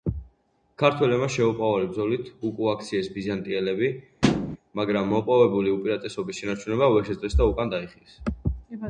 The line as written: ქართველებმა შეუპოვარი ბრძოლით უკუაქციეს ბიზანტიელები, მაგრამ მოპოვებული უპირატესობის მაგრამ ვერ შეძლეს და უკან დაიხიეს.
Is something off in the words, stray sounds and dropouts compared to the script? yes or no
yes